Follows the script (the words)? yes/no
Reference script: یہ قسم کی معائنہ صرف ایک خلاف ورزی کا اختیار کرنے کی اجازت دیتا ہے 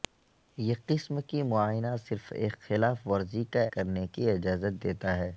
no